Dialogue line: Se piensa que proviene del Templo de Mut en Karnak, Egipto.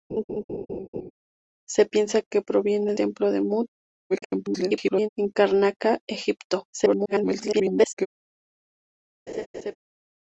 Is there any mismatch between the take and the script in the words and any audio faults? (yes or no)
yes